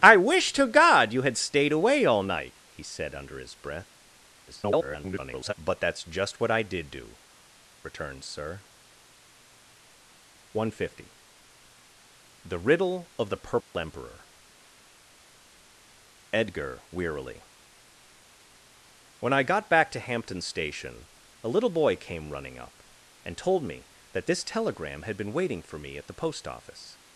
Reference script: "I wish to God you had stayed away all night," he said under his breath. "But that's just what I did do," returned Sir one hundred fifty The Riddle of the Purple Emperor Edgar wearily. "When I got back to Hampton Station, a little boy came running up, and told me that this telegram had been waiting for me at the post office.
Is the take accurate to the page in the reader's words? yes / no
no